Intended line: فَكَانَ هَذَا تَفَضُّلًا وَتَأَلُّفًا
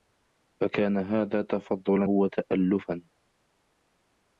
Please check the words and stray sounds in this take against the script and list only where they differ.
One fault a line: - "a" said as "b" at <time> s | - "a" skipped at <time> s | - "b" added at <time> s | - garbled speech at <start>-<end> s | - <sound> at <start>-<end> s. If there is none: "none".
none